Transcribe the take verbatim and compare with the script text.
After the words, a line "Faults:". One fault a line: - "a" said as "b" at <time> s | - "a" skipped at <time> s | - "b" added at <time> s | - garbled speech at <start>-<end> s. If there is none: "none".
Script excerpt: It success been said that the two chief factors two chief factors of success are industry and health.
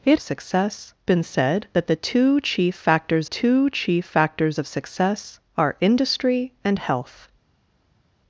It success been said that the two chief factors two chief factors of success are industry and health.
Faults:
none